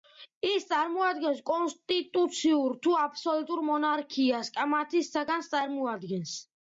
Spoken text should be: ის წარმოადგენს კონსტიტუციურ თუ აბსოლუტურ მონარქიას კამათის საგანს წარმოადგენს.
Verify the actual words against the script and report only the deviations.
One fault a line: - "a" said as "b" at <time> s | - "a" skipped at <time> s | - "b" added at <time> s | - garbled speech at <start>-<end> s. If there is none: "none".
none